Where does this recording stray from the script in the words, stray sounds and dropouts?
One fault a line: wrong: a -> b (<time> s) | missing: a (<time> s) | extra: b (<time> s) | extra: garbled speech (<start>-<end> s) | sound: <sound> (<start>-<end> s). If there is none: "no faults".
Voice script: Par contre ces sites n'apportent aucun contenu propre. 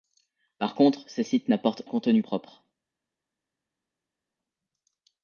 missing: aucun (1.8 s)